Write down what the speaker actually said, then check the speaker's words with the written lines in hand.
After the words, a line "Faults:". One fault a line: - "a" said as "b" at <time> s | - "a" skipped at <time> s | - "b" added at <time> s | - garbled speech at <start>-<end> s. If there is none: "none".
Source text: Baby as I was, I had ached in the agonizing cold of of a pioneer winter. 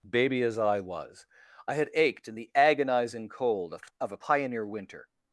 Baby as I was, I had ached in the agonizing cold of of a pioneer winter.
Faults:
none